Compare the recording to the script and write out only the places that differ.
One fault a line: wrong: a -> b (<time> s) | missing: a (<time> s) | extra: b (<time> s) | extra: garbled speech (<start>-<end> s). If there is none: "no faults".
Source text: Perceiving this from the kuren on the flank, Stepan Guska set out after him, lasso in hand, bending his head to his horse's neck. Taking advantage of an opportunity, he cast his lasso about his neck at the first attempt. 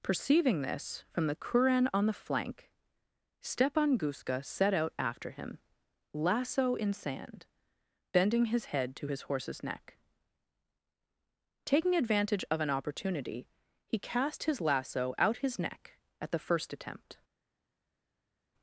wrong: hand -> sand (6.9 s)
wrong: about -> out (15.2 s)